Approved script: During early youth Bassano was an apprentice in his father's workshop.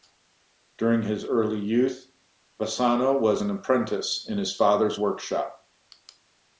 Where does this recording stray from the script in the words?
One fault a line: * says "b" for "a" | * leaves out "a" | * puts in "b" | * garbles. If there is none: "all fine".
* puts in "his"